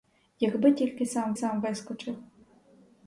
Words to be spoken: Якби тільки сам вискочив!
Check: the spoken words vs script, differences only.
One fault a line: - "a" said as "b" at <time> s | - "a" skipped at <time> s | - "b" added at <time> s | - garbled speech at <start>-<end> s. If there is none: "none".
- "сам" added at 1.3 s